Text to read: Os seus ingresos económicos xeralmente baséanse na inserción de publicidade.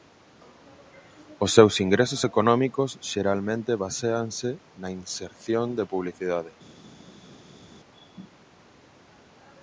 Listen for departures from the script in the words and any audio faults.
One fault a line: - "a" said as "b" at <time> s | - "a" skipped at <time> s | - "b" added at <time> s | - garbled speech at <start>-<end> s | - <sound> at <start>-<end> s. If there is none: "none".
none